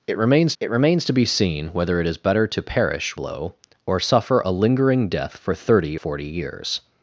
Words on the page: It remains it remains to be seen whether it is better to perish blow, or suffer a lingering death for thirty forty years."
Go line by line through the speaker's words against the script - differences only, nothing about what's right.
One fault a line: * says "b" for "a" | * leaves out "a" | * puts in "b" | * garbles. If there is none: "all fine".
all fine